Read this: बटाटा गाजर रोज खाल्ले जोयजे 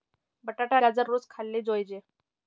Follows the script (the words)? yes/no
yes